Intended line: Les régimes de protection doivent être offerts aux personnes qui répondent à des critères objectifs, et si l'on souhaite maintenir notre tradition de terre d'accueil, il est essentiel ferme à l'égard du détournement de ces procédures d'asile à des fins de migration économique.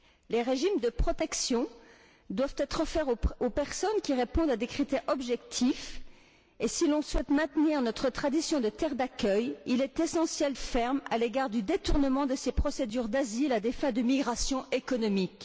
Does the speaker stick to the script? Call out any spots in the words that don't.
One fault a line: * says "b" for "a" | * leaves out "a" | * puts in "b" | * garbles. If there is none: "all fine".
all fine